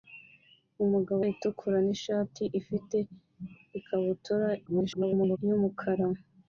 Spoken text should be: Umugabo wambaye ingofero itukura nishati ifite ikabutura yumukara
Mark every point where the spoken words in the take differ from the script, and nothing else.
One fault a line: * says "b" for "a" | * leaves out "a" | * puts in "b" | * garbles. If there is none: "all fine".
* leaves out "wambaye ingofero"
* garbles